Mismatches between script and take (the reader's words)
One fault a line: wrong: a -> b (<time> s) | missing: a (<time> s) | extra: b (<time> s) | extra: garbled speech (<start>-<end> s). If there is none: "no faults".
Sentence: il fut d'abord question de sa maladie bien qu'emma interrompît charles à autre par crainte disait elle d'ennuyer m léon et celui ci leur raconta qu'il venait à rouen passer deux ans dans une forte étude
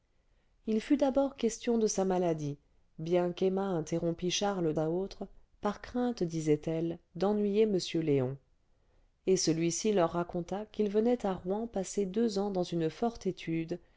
no faults